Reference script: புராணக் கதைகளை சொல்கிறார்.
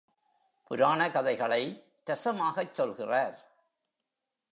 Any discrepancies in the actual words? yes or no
yes